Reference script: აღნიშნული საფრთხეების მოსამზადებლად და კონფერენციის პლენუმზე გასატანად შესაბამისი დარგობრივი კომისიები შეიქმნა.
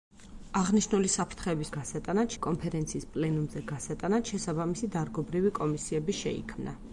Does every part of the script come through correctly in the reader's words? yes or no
no